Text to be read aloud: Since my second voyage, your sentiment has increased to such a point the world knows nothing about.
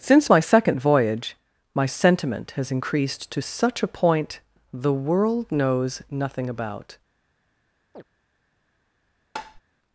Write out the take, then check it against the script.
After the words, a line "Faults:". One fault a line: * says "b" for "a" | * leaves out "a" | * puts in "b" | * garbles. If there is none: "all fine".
Since my second voyage, my sentiment has increased to such a point the world knows nothing about.
Faults:
* says "my" for "your"